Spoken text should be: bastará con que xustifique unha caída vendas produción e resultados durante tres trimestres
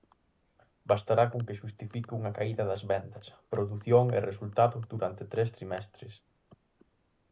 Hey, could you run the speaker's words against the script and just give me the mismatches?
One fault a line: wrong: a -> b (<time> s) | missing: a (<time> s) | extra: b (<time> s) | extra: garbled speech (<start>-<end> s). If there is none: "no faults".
extra: das (2.7 s)